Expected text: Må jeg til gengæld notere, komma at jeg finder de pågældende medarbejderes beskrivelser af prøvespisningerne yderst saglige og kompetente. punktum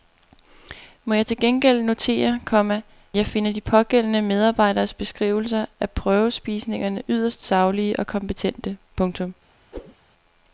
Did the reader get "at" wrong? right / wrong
wrong